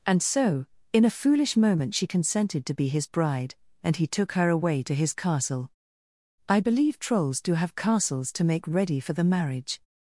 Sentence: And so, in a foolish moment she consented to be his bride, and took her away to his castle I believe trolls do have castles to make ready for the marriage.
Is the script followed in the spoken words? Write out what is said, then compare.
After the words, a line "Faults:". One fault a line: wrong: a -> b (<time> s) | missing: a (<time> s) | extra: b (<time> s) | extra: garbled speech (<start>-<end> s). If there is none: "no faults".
And so, in a foolish moment she consented to be his bride, and he took her away to his castle I believe trolls do have castles to make ready for the marriage.
Faults:
extra: he (4.0 s)